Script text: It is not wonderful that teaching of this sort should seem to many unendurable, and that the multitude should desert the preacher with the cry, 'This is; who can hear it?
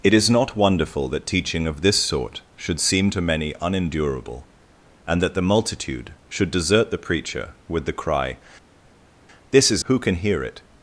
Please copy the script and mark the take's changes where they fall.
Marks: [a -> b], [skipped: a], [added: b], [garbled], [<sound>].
It is not wonderful that teaching of this sort should seem to many unendurable, and that the multitude should desert the preacher with the cry, 'This is; who can hear it?